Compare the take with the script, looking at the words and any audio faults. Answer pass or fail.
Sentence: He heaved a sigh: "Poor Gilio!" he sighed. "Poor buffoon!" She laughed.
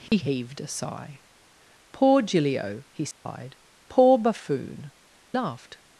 fail